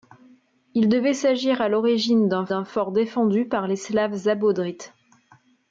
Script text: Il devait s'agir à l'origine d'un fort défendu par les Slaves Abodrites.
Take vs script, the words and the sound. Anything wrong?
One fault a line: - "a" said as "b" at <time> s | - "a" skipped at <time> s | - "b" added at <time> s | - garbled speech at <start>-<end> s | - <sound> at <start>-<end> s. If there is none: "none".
- "d'un" added at 2.5 s